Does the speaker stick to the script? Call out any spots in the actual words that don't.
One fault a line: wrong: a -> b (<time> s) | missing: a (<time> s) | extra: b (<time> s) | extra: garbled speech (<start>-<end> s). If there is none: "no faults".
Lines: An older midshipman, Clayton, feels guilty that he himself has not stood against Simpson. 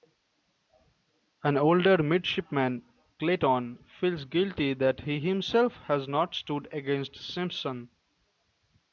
no faults